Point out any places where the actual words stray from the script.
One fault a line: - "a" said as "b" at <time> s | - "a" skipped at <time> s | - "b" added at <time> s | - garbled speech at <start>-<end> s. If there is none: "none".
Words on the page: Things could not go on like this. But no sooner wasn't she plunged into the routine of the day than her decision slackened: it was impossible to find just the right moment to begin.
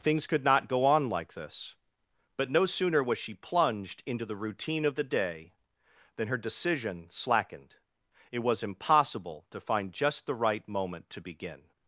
- "wasn't" said as "was" at 3.0 s